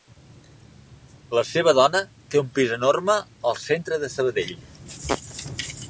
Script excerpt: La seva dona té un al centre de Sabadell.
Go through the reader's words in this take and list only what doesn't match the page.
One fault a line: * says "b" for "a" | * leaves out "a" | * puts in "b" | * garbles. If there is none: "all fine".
* puts in "pis enorme"